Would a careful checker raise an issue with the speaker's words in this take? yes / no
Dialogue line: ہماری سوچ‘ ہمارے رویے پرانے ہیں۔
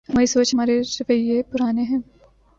no